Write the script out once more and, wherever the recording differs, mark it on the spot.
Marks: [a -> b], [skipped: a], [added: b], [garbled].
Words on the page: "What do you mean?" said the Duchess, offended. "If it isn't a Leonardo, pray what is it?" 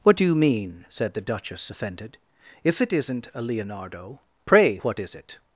"What do you mean?" said the Duchess, offended. "If it isn't a Leonardo, pray what is it?"